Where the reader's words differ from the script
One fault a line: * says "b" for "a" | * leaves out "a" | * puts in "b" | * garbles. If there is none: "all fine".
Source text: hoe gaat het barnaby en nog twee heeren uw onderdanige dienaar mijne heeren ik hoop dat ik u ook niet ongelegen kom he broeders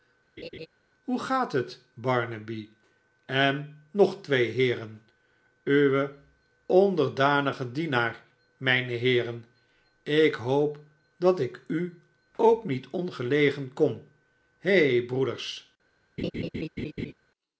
all fine